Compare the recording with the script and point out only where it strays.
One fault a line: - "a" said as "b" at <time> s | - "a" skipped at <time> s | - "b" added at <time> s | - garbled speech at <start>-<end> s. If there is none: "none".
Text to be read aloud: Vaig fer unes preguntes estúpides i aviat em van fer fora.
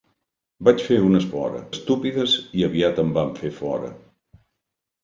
- "preguntes" said as "fora" at 1.3 s